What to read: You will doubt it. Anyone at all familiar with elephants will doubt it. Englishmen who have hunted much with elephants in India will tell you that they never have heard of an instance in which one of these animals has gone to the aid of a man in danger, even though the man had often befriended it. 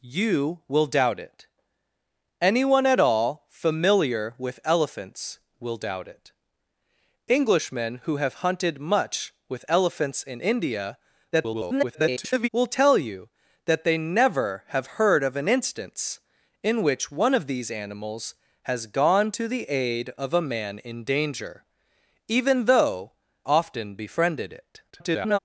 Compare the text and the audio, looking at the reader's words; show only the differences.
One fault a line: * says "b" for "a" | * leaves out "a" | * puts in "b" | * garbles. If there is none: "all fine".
* garbles
* leaves out "the man had"
* garbles